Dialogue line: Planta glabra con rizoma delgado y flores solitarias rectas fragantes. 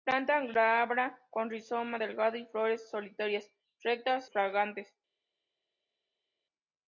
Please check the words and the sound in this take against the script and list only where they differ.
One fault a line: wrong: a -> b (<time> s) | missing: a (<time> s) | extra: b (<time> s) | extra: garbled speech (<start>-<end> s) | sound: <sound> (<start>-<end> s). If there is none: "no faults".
no faults